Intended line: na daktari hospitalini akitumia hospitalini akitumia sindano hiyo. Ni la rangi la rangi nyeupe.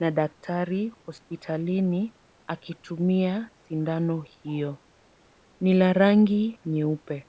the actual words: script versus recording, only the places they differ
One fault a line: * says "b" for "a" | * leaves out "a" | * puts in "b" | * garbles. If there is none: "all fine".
* leaves out "hospitalini akitumia"
* leaves out "la rangi"